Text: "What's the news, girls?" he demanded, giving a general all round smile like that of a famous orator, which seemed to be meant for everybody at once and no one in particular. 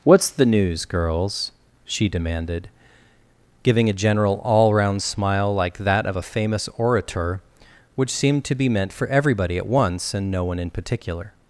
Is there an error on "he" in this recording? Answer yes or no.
yes